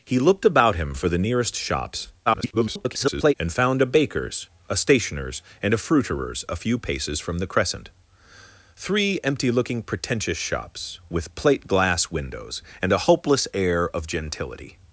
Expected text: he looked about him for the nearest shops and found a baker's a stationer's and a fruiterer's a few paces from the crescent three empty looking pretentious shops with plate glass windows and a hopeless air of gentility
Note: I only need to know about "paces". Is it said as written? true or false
true